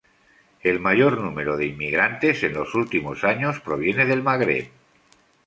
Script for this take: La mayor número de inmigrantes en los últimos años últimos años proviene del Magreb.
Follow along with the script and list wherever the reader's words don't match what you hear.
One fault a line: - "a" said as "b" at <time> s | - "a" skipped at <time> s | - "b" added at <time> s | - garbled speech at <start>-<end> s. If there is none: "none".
- "La" said as "El" at 0.6 s
- "últimos años" skipped at 3.6 s